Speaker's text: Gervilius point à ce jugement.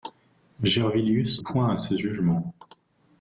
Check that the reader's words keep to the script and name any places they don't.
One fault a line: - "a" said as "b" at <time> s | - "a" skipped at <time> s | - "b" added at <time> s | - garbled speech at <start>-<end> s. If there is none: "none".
none